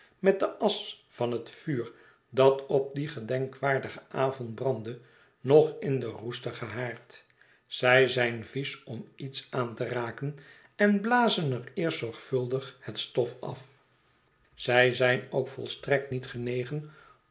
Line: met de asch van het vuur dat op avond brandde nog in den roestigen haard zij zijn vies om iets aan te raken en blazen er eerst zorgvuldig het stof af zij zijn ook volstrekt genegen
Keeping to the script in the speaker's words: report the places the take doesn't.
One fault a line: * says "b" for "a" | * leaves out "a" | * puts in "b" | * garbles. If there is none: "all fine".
* puts in "dien gedenkwaardigen"
* puts in "niet"